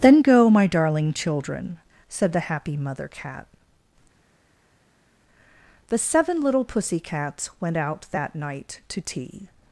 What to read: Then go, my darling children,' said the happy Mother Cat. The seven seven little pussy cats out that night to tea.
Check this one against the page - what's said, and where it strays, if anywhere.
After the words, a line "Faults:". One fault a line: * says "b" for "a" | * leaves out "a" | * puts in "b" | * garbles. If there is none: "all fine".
Then go, my darling children,' said the happy Mother Cat. The seven little pussy cats went out that night to tea.
Faults:
* leaves out "seven"
* puts in "went"